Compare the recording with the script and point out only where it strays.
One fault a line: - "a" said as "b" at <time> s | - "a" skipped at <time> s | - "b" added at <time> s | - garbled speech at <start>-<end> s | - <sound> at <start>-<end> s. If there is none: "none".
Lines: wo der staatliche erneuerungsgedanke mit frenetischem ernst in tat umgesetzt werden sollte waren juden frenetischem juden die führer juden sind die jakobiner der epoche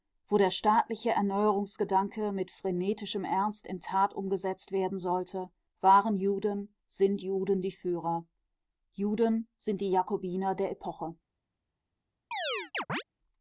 - "frenetischem" said as "sind" at 6.9 s
- chirp at 12.3-13.0 s